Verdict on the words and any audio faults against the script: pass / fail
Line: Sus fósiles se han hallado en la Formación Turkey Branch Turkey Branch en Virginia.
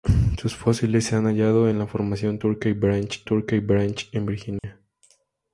fail